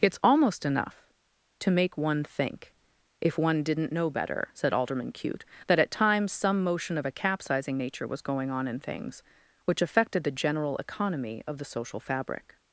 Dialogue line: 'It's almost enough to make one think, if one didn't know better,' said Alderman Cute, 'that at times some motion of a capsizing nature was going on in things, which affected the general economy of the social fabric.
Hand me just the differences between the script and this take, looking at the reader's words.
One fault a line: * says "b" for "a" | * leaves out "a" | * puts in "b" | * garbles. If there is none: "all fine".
all fine